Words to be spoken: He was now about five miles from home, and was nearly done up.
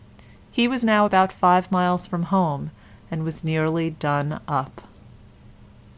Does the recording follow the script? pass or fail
pass